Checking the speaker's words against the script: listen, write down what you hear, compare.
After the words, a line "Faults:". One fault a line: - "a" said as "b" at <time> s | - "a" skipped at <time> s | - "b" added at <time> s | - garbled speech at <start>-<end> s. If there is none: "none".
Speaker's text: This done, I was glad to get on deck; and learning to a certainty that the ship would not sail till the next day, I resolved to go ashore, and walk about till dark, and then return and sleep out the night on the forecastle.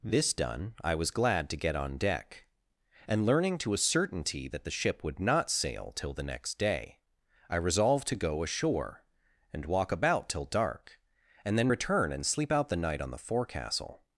This done, I was glad to get on deck; and learning to a certainty that the ship would not sail till the next day, I resolved to go ashore, and walk about till dark, and then return and sleep out the night on the forecastle.
Faults:
none